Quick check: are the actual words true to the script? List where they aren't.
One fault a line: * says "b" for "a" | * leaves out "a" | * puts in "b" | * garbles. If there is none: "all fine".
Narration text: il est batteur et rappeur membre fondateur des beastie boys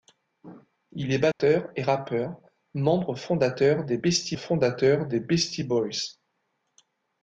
* puts in "fondateur des beastie"